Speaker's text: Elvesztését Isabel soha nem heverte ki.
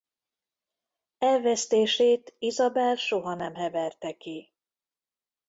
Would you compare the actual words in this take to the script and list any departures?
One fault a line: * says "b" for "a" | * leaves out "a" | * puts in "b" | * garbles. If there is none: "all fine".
all fine